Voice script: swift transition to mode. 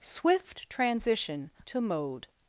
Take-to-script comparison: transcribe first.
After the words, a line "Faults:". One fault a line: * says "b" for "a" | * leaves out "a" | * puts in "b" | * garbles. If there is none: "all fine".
swift transition to mode.
Faults:
all fine